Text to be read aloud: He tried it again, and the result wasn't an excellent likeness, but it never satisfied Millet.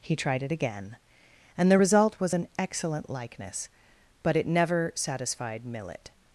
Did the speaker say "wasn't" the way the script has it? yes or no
no